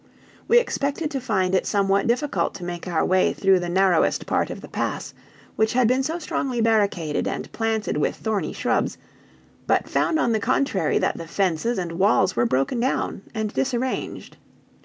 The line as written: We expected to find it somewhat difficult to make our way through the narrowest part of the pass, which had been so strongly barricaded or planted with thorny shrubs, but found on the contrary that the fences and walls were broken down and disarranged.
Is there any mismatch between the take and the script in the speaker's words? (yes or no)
yes